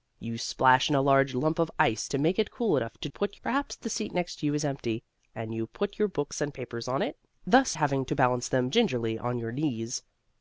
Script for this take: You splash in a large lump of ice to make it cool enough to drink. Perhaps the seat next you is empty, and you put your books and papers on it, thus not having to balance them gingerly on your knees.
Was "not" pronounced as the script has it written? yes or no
no